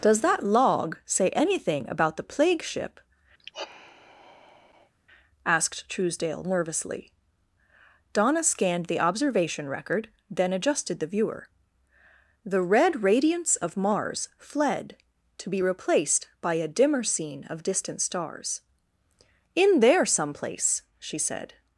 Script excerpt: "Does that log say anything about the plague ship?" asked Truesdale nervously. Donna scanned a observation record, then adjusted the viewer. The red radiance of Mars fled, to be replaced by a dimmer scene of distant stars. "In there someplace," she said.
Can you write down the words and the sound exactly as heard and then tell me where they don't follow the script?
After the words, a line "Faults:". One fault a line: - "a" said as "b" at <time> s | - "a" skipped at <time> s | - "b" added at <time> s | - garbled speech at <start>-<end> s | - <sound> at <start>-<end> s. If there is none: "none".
"Does that log say anything about the plague ship?" asked Truesdale nervously. Donna scanned the observation record, then adjusted the viewer. The red radiance of Mars fled, to be replaced by a dimmer scene of distant stars. "In there someplace," she said.
Faults:
- sigh at 3.4-4.9 s
- "a" said as "the" at 8.9 s